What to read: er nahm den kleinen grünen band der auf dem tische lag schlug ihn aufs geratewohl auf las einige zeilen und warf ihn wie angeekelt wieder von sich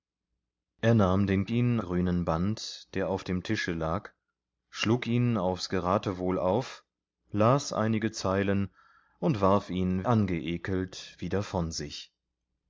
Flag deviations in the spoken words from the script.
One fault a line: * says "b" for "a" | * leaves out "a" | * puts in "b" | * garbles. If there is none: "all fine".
* says "ihn" for "kleinen"
* leaves out "wie"